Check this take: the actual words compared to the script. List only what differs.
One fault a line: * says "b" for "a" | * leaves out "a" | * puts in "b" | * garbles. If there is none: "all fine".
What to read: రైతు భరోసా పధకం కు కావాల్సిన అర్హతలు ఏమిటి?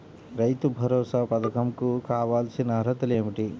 all fine